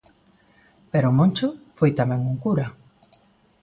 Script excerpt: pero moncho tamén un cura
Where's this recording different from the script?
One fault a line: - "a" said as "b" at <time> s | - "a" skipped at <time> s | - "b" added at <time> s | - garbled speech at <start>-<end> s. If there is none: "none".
- "foi" added at 1.8 s